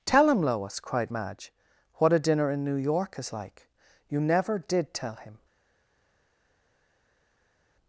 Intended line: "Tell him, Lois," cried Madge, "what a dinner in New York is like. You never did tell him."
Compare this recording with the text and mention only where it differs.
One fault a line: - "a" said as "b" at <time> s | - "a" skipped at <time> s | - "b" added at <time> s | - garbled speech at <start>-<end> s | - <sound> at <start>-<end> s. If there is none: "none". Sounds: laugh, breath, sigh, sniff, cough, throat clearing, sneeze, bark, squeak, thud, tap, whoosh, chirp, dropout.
none